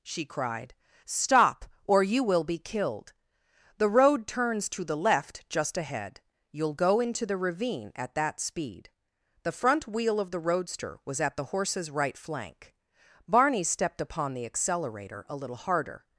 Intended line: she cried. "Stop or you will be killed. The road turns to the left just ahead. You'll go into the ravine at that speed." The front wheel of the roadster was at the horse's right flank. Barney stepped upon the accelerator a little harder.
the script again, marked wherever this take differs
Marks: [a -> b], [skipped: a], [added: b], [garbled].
she cried. "Stop or you will be killed. The road turns to the left just ahead. You'll go into the ravine at that speed." The front wheel of the roadster was at the horse's right flank. Barney stepped upon the accelerator a little harder.